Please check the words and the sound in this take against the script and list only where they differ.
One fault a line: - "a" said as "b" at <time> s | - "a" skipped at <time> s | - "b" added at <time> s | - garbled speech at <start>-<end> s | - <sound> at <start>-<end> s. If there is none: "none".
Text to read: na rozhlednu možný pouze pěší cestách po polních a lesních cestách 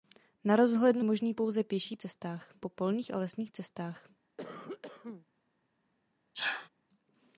- cough at 4.4-5.3 s
- sneeze at 6.3-6.7 s